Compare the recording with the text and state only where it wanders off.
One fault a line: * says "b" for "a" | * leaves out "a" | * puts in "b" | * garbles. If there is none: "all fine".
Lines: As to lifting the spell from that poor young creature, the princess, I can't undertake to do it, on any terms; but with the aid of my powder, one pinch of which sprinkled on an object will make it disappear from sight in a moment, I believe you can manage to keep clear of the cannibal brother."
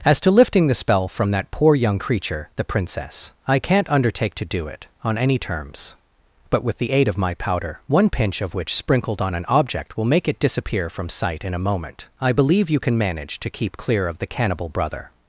all fine